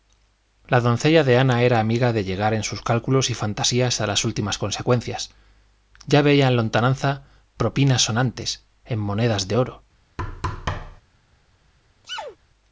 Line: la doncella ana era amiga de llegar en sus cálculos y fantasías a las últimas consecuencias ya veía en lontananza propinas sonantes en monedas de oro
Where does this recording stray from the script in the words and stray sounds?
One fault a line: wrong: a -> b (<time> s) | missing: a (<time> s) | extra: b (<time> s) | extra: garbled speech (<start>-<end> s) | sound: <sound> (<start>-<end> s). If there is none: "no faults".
extra: de (1.2 s)
sound: thud (10.2-11.0 s)
sound: sneeze (12.0-12.4 s)